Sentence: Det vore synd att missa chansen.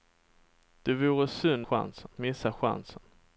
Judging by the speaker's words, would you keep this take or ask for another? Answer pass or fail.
fail